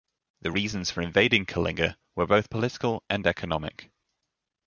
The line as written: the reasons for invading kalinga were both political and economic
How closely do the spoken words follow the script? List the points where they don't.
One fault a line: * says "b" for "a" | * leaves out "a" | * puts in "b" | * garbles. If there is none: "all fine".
all fine